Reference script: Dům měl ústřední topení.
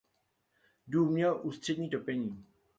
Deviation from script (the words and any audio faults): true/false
false